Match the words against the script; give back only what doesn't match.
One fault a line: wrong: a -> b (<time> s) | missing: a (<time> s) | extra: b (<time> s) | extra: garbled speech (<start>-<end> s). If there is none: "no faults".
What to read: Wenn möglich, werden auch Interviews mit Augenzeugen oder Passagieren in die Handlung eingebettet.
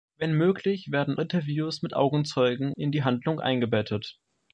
missing: auch (1.2 s)
missing: oder Passagieren (2.7 s)